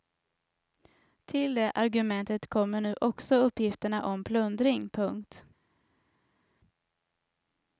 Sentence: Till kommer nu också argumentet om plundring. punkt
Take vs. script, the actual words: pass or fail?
fail